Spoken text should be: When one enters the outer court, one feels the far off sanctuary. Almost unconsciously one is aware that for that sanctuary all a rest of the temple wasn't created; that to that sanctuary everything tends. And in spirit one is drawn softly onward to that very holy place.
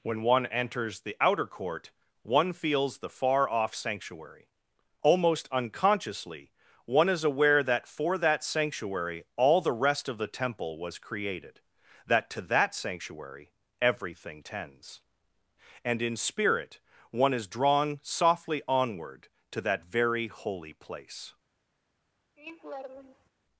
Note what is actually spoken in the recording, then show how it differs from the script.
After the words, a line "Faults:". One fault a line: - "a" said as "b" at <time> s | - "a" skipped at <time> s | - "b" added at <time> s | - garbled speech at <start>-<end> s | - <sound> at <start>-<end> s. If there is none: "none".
When one enters the outer court, one feels the far off sanctuary. Almost unconsciously one is aware that for that sanctuary all the rest of the temple was created; that to that sanctuary everything tends. And in spirit one is drawn softly onward to that very holy place.
Faults:
- "a" said as "the" at 9.6 s
- "wasn't" said as "was" at 10.8 s
- laugh at 22.4-23.3 s